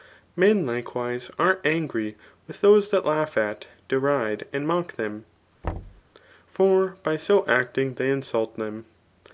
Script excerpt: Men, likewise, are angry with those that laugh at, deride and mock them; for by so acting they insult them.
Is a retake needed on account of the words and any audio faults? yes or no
yes